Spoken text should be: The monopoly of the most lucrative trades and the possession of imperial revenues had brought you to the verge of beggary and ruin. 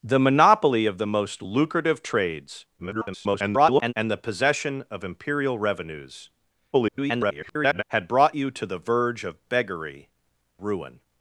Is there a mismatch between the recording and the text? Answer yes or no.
yes